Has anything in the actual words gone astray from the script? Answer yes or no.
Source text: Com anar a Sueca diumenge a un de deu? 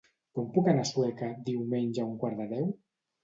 yes